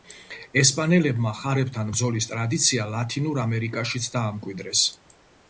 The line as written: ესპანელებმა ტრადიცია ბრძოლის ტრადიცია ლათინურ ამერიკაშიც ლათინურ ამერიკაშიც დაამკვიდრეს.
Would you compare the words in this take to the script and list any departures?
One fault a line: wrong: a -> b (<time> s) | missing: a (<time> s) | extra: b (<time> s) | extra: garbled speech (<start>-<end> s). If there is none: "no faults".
wrong: ტრადიცია -> ხარებთან (1.4 s)
missing: ლათინურ ამერიკაშიც (4.1 s)